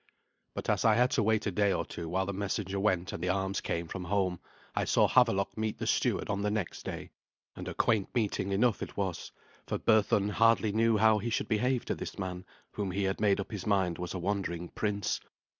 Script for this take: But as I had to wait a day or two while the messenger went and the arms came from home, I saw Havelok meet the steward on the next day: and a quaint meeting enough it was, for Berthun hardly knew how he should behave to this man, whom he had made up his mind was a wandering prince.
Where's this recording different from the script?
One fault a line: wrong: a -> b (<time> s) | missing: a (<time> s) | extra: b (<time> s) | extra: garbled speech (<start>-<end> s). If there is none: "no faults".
no faults